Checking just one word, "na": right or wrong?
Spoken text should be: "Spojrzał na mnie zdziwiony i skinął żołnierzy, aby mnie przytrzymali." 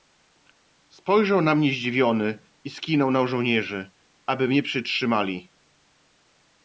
right